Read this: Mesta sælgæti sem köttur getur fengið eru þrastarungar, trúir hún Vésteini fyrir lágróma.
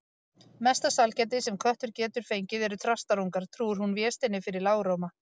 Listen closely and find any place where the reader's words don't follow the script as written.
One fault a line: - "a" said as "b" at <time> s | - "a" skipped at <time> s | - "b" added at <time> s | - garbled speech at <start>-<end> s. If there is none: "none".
none